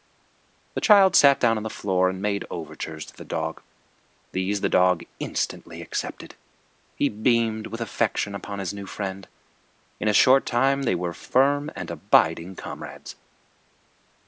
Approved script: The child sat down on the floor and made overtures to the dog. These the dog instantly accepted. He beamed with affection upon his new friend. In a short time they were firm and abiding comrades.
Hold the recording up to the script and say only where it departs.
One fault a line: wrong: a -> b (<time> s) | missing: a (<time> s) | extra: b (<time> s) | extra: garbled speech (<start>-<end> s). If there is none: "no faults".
no faults